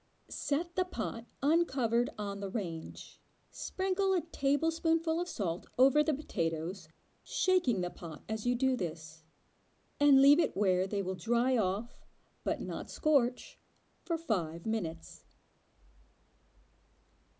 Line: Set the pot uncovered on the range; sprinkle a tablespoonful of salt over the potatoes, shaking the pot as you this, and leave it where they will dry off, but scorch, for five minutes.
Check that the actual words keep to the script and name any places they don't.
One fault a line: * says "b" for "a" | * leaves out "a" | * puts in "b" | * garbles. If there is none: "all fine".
* puts in "do"
* puts in "not"